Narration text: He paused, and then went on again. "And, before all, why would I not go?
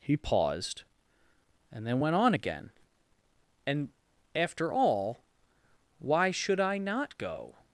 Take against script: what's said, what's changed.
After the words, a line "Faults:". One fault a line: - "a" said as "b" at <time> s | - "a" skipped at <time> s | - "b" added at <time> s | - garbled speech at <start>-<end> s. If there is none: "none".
He paused, and then went on again. "And, after all, why should I not go?
Faults:
- "before" said as "after" at 4.3 s
- "would" said as "should" at 6.3 s